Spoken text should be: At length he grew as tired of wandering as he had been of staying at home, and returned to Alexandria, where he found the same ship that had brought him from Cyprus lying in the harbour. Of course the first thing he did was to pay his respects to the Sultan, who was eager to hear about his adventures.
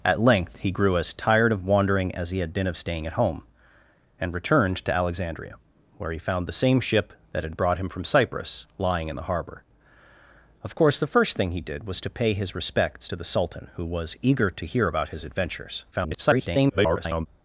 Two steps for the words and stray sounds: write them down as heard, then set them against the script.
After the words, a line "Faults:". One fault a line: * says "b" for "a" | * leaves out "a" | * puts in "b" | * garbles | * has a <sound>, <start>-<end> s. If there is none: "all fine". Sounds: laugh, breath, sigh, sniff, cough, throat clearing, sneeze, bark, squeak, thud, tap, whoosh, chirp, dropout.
At length he grew as tired of wandering as he had been of staying at home, and returned to Alexandria, where he found the same ship that had brought him from Cyprus lying in the harbour. Of course the first thing he did was to pay his respects to the Sultan, who was eager to hear about his adventures. [garbled]
Faults:
* garbles